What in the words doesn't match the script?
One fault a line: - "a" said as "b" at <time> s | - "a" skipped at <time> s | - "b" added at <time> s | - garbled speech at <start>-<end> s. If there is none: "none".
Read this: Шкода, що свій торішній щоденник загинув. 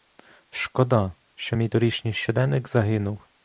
- "свій" said as "мій" at 1.5 s